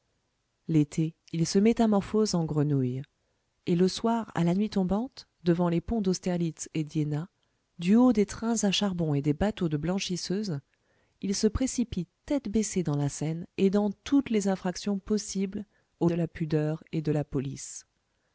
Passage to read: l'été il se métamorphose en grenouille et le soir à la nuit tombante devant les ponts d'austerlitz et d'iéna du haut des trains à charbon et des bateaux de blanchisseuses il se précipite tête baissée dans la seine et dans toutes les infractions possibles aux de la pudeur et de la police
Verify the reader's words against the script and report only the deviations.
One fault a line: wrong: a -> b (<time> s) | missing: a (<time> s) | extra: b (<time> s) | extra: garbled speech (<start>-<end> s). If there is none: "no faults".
no faults